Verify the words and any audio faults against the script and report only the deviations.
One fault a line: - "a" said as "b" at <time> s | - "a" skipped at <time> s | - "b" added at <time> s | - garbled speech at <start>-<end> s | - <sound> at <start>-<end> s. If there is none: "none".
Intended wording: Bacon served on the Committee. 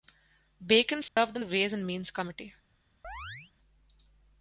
- dropout at 1.1-1.2 s
- "Ways and Means" added at 1.5 s
- chirp at 3.0-3.5 s